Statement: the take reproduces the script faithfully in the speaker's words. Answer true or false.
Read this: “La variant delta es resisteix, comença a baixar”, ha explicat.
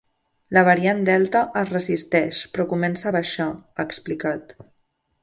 false